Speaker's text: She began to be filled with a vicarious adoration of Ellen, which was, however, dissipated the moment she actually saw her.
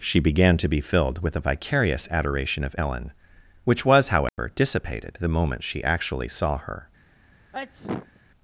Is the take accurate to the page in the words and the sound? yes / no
no